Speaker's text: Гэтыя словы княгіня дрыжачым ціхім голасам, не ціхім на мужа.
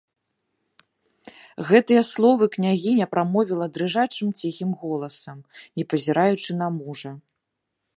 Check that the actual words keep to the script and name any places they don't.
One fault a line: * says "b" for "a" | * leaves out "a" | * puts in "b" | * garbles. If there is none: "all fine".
* puts in "прамовіла"
* says "пазіраючы" for "ціхім"